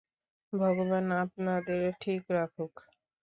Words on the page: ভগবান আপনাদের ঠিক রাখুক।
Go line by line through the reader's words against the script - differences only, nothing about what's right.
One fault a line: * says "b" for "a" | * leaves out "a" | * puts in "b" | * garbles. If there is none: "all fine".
all fine